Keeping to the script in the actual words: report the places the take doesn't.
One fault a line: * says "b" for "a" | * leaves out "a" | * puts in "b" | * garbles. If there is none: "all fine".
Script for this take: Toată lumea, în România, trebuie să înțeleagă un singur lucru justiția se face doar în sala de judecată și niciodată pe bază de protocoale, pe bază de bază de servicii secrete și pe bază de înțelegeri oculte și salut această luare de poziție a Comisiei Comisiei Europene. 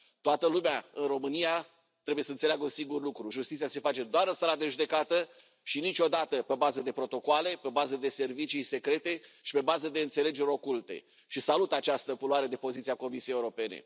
* leaves out "bază de"
* leaves out "Comisiei"